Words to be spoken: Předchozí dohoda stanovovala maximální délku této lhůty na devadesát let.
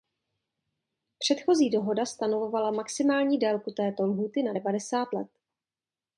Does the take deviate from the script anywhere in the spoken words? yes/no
no